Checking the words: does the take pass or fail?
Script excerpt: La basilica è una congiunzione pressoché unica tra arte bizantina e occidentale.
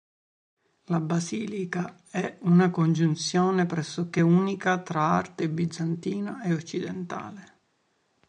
pass